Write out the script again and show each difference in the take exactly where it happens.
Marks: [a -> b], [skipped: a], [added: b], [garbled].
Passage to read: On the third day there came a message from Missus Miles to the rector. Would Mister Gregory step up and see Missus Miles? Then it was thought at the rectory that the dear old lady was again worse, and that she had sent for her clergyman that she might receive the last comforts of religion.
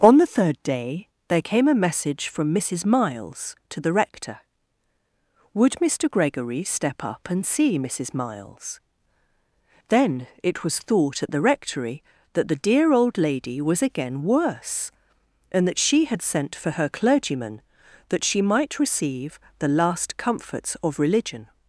On the third day there came a message from Missus Miles to the rector. Would Mister Gregory step up and see Missus Miles? Then it was thought at the rectory that the dear old lady was again worse, and that she had sent for her clergyman that she might receive the last comforts of religion.